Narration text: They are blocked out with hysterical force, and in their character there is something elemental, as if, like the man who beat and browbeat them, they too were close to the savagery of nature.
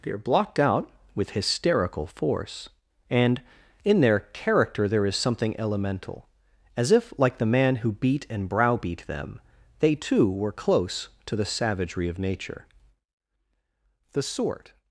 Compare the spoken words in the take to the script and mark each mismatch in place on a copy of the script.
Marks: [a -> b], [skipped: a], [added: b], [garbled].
They are blocked out with hysterical force, and in their character there is something elemental, as if, like the man who beat and browbeat them, they too were close to the savagery of nature. [added: The sort]